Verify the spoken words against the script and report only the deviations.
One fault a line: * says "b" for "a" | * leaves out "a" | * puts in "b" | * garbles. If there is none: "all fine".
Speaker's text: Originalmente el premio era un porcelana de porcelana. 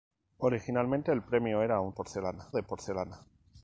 all fine